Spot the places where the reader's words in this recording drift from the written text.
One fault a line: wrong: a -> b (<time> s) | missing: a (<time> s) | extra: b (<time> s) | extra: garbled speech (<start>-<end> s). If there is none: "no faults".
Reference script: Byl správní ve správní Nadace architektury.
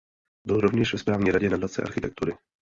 wrong: správní -> rovněž (0.6 s)
extra: radě (1.3 s)